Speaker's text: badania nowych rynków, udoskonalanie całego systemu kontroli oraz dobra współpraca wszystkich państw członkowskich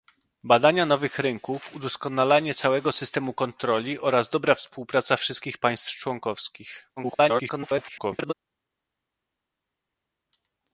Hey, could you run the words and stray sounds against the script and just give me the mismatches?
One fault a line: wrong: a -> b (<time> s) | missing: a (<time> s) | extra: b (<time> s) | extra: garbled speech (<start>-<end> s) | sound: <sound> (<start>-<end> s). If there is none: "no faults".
extra: garbled speech (7.0-8.3 s)